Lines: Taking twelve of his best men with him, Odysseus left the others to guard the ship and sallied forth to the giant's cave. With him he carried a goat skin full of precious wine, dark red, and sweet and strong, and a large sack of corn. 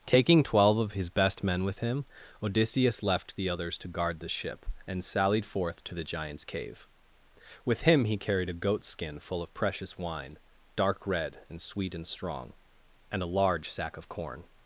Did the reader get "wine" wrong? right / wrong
right